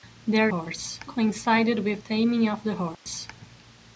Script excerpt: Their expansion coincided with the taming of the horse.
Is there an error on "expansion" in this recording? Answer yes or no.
yes